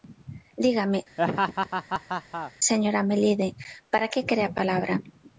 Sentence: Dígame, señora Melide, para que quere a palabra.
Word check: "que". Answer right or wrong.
right